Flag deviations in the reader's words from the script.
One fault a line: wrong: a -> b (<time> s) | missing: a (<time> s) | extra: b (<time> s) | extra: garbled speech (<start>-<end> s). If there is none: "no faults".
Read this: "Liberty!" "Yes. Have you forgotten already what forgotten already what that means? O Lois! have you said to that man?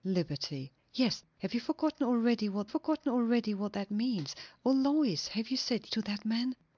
no faults